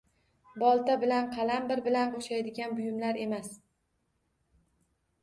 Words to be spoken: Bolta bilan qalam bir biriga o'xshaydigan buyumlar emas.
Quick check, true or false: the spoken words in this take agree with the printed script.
false